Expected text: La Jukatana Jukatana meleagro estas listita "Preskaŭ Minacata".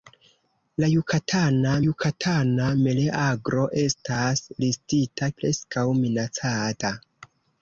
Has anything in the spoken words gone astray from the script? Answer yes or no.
no